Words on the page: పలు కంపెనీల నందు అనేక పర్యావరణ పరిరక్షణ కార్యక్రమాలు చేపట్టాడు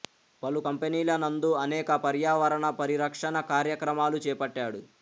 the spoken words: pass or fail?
pass